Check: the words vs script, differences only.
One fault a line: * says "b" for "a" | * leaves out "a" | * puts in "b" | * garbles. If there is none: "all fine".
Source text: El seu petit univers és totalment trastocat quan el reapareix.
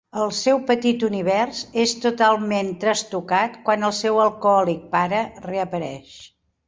* puts in "seu alcohòlic pare"